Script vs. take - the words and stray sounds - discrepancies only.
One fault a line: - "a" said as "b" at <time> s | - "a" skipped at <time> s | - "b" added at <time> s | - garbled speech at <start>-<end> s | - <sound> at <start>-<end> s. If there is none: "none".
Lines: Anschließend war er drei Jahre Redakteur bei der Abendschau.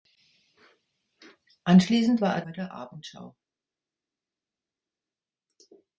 - "drei Jahre Redakteur" skipped at 2.4 s